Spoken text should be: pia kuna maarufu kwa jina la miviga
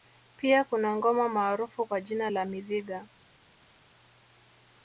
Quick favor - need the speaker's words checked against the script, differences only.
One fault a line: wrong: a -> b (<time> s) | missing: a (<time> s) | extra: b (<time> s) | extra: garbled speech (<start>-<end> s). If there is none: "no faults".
extra: ngoma (0.9 s)